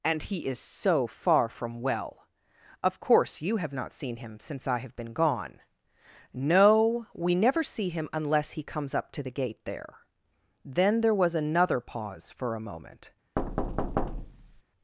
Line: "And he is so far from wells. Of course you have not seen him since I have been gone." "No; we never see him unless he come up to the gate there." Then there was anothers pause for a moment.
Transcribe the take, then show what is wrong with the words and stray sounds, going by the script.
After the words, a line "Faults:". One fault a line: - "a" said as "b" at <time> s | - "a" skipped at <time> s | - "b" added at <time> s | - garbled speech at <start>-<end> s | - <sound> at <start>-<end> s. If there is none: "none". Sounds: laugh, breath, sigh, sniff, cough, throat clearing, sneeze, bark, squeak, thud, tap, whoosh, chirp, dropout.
"And he is so far from well. Of course you have not seen him since I have been gone." "No; we never see him unless he comes up to the gate there." Then there was another pause for a moment.
Faults:
- "wells" said as "well" at 1.8 s
- "come" said as "comes" at 8.6 s
- "anothers" said as "another" at 11.3 s
- thud at 13.4-14.6 s